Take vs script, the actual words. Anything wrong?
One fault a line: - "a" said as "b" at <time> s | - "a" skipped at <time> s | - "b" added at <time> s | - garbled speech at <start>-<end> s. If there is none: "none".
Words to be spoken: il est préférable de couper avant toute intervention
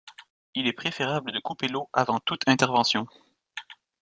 - "l'eau" added at 1.7 s